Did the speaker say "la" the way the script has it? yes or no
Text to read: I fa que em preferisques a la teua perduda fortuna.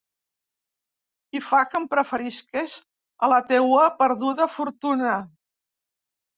yes